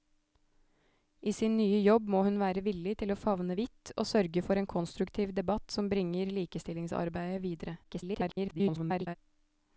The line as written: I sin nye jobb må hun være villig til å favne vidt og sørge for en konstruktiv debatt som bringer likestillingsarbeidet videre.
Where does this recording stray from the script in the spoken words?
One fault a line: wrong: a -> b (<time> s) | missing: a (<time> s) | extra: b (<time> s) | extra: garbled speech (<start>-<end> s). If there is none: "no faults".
extra: garbled speech (7.8-9.2 s)